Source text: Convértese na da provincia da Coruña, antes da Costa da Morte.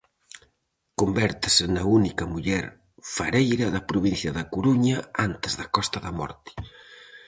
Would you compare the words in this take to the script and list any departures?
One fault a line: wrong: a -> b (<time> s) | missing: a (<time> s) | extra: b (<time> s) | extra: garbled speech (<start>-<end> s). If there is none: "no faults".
extra: única muller fareira (2.0 s)